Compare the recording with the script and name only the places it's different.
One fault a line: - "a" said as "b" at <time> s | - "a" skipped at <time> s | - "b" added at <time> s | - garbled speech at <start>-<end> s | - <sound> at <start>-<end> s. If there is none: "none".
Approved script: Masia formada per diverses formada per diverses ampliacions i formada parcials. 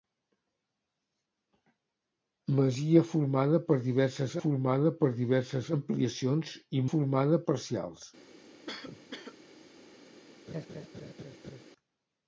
- cough at 8.7-9.4 s
- laugh at 10.5-11.6 s